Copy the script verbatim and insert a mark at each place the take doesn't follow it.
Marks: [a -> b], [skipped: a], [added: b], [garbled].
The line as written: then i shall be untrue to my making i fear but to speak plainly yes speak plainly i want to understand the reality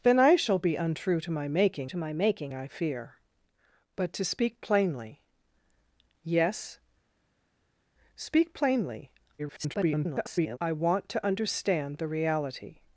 then i shall be untrue to my making [added: to my making] i fear but to speak plainly yes speak plainly [garbled] i want to understand the reality